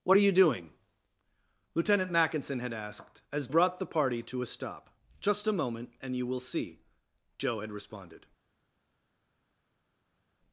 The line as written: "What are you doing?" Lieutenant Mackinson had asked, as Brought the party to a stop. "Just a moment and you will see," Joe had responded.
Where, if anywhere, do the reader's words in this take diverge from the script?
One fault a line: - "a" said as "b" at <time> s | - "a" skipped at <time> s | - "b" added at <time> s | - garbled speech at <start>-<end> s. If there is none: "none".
none